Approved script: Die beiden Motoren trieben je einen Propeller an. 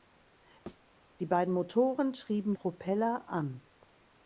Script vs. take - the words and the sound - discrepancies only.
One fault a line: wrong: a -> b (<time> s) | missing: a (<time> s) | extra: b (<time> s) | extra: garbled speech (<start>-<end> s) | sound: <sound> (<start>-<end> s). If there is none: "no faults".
sound: thud (0.7-0.9 s)
missing: je einen (2.5 s)